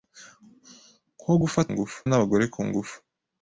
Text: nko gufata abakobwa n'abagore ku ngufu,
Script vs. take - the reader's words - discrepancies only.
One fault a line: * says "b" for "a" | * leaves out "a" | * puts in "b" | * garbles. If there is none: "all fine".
* says "ngufu" for "abakobwa"